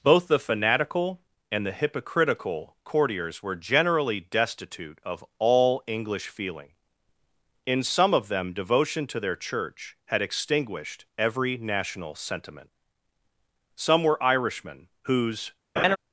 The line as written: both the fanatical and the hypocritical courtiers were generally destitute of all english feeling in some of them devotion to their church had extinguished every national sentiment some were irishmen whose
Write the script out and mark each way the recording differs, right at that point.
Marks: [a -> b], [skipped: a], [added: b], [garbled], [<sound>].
both the fanatical and the hypocritical courtiers were generally destitute of all english feeling in some of them devotion to their church had extinguished every national sentiment some were irishmen whose [laugh]